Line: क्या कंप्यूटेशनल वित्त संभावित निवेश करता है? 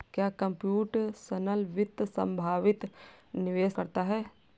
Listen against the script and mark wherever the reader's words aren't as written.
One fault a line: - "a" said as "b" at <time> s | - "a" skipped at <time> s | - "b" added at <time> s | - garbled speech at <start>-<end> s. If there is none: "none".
none